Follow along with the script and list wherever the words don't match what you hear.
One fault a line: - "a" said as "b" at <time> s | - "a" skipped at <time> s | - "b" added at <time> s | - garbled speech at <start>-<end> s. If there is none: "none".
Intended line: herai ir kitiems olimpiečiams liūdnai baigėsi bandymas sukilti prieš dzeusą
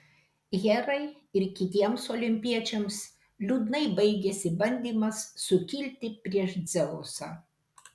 none